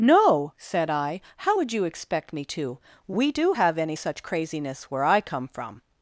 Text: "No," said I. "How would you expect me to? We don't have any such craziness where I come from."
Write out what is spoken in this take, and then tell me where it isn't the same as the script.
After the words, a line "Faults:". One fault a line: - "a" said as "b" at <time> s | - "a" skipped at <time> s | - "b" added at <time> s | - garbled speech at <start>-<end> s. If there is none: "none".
"No," said I. "How would you expect me to? We do have any such craziness where I come from."
Faults:
- "don't" said as "do" at 3.3 s